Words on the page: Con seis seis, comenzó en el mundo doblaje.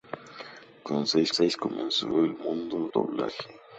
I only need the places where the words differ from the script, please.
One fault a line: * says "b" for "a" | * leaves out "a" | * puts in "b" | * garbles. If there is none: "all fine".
all fine